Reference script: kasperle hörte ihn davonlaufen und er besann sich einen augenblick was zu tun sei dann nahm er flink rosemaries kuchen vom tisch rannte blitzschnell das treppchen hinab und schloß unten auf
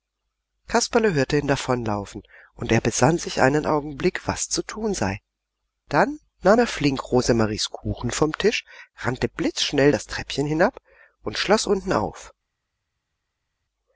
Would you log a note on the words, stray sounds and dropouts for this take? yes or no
no